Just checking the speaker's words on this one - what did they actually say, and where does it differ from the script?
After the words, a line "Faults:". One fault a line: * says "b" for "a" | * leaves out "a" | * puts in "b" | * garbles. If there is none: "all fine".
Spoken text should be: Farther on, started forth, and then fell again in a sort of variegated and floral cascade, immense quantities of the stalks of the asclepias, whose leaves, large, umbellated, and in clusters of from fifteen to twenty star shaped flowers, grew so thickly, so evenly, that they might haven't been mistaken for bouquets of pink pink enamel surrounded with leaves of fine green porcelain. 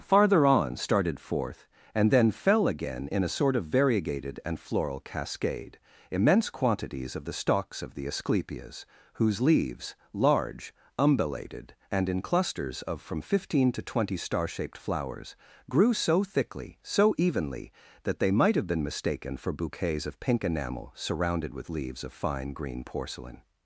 Farther on, started forth, and then fell again in a sort of variegated and floral cascade, immense quantities of the stalks of the asclepias, whose leaves, large, umbellated, and in clusters of from fifteen to twenty star shaped flowers, grew so thickly, so evenly, that they might have been mistaken for bouquets of pink enamel surrounded with leaves of fine green porcelain.
Faults:
* says "have" for "haven't"
* leaves out "pink"